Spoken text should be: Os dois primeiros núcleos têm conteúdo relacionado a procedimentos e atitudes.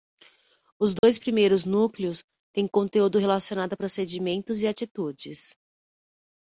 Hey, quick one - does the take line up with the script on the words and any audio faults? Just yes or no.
no